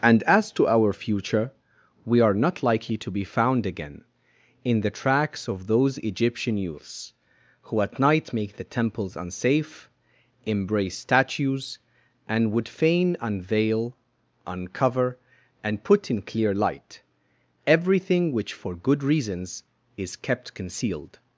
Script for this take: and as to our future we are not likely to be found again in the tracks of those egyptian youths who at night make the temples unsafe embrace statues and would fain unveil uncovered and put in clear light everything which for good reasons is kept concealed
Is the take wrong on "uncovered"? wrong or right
wrong